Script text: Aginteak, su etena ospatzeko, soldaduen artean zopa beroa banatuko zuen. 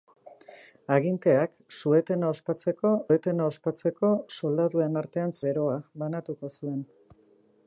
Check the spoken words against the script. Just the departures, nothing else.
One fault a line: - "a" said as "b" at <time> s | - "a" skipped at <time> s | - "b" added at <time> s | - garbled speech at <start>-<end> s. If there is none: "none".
- "etena ospatzeko" added at 3.1 s
- "zopa" skipped at 5.4 s